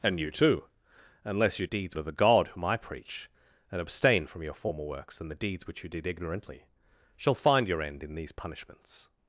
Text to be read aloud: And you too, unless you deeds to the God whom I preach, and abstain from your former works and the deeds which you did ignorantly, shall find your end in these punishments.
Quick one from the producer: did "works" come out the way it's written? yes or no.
yes